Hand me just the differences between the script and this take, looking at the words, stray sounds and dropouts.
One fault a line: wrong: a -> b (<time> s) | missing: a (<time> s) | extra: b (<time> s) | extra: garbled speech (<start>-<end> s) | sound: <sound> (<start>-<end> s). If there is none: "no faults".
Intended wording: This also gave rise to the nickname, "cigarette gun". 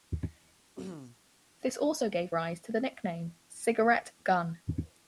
sound: throat clearing (0.8-1.2 s)